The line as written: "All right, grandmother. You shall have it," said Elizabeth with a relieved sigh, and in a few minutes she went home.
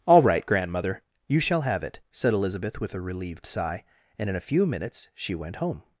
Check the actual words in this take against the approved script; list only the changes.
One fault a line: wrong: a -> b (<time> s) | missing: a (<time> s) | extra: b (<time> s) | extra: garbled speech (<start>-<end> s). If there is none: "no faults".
no faults